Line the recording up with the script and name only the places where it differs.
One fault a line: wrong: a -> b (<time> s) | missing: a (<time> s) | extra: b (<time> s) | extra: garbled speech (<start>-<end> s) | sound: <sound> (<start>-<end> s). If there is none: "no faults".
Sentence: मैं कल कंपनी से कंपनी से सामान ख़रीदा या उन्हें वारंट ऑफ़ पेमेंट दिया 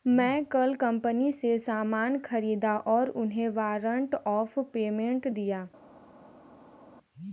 missing: कंपनी से (1.6 s)
wrong: या -> और (2.9 s)